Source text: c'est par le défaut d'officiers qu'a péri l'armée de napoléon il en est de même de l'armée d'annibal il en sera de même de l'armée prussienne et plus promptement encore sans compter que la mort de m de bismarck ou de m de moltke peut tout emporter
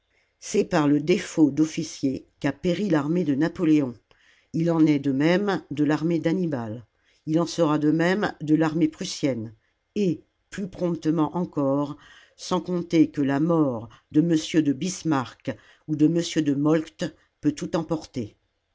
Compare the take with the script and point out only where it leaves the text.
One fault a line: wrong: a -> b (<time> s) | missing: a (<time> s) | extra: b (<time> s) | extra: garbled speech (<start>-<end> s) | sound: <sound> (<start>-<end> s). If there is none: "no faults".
no faults